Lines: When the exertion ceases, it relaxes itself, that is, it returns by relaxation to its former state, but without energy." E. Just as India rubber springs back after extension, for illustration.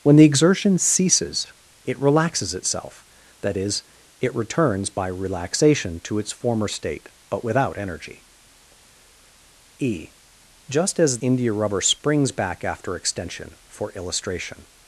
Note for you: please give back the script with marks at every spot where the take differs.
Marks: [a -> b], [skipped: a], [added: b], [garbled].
When the exertion ceases, it relaxes itself, that is, it returns by relaxation to its former state, but without energy." E. Just as India rubber springs back after extension, for illustration.